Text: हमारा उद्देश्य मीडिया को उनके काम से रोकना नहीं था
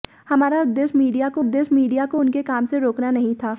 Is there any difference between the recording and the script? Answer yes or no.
yes